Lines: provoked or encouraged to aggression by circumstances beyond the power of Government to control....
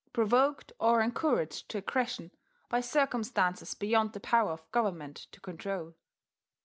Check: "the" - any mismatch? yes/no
no